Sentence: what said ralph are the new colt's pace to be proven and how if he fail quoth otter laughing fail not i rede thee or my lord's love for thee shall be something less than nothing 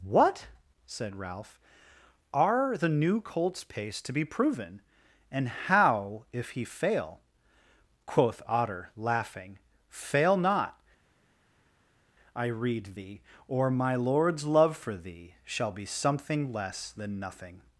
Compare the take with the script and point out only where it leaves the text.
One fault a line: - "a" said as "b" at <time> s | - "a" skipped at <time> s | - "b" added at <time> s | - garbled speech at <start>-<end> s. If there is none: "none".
none